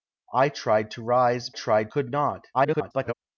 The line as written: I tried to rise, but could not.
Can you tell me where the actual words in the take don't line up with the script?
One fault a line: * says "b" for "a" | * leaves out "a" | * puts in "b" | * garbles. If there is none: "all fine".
* says "tried" for "but"
* garbles